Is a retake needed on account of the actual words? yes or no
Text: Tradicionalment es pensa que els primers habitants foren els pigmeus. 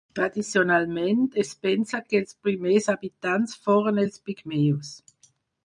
no